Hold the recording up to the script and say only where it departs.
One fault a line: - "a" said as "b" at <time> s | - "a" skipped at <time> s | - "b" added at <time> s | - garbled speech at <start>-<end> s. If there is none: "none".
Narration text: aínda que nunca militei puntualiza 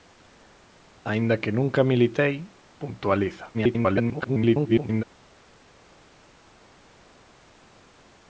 - garbled speech at 3.5-5.0 s